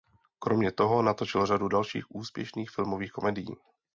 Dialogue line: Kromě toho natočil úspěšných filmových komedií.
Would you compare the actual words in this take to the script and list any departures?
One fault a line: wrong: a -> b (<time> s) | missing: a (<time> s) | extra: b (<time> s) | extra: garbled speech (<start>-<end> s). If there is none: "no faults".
extra: řadu dalších (1.4 s)